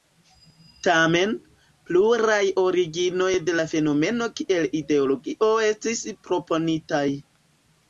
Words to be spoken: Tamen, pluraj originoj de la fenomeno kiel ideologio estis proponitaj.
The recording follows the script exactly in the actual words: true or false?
true